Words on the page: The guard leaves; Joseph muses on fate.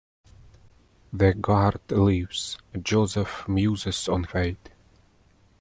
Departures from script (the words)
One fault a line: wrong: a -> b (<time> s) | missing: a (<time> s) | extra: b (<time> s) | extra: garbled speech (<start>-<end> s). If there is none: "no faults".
no faults